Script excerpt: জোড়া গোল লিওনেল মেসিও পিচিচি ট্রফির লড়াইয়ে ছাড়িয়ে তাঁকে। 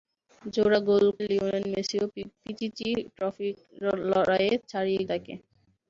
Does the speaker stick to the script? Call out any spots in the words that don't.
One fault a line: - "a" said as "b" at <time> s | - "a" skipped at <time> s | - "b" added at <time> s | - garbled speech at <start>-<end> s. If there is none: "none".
none